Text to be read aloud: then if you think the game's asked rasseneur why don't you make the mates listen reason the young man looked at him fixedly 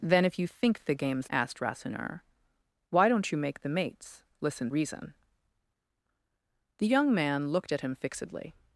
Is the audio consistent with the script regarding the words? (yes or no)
yes